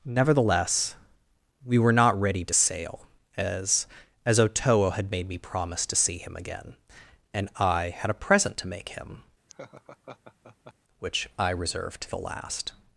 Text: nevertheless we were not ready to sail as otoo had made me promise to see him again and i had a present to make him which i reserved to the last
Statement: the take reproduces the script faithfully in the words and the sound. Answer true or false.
false